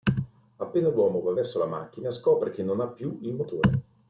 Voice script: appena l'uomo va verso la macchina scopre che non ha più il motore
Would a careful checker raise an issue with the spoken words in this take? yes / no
no